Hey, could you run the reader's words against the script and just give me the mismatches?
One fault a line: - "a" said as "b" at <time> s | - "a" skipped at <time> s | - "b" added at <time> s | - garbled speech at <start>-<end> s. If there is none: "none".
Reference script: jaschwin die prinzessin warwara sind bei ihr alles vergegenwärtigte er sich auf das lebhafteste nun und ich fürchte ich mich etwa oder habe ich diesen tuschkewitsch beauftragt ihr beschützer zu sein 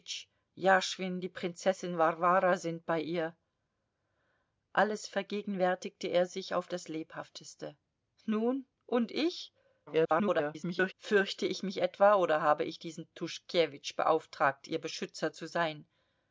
- garbled speech at 9.9-10.9 s